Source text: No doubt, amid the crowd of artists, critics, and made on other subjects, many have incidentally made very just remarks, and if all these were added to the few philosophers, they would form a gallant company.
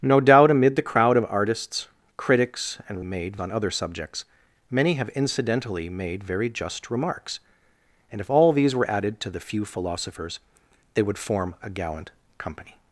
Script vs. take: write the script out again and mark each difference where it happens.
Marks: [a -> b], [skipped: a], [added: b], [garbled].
No doubt, amid the crowd of artists, critics, and made on other subjects, many have incidentally made very just remarks, and if all these were added to the few philosophers, they would form a gallant company.